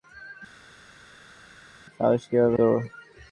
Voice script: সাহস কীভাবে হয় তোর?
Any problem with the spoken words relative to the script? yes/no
yes